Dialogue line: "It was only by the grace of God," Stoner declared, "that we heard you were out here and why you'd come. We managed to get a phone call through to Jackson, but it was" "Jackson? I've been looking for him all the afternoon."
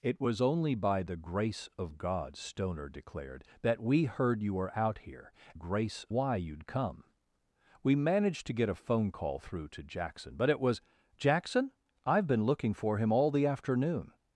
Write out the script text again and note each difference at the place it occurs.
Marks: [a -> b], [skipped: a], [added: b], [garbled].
"It was only by the grace of God," Stoner declared, "that we heard you were out here [and -> grace] why you'd come. We managed to get a phone call through to Jackson, but it was" "Jackson? I've been looking for him all the afternoon."